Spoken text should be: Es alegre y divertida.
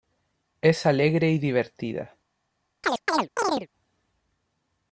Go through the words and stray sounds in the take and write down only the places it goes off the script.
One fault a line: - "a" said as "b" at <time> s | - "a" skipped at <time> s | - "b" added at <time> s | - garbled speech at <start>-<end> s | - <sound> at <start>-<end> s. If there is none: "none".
- chirp at 2.8-3.7 s